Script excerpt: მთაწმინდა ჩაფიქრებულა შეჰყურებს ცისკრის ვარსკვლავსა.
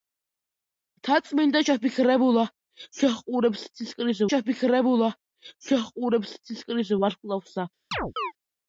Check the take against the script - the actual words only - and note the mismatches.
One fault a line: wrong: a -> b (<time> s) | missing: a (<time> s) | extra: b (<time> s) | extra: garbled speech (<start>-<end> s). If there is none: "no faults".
extra: ჩაფიქრებულა შეჰყურებს ცისკრის (4.3 s)